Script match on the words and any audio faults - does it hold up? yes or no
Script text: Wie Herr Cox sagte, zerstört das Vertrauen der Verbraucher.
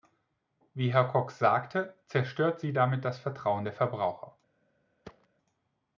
no